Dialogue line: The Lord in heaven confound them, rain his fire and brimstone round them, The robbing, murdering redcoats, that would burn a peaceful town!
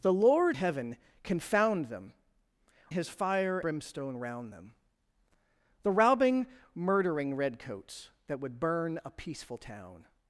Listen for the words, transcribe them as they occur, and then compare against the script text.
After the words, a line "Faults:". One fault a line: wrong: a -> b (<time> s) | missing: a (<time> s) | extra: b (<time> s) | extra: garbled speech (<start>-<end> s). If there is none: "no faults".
The Lord heaven confound them, his fire brimstone round them, The robbing, murdering redcoats, that would burn a peaceful town!
Faults:
missing: in (0.6 s)
missing: rain (2.1 s)
missing: and (3.6 s)